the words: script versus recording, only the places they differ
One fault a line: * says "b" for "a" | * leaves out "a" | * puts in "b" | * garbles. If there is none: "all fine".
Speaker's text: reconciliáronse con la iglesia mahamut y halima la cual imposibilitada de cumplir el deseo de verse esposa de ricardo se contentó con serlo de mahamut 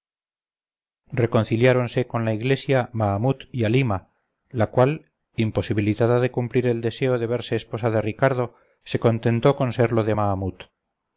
all fine